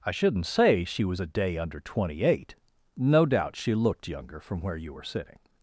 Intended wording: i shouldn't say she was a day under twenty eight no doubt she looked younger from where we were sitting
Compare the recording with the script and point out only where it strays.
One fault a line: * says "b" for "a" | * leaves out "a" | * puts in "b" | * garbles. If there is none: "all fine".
* says "you" for "we"